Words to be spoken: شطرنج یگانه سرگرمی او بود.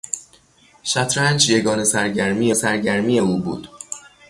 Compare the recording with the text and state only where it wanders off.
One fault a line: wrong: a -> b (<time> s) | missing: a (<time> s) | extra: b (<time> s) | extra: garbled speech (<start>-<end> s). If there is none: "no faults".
extra: سرگرمی (2.5 s)